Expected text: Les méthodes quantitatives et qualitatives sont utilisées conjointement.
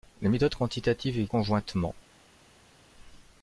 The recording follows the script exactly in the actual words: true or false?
false